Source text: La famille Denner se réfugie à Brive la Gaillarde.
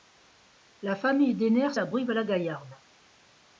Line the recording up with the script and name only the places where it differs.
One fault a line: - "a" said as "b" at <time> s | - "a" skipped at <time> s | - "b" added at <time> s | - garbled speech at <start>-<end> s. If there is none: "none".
- "se réfugie" skipped at 1.8 s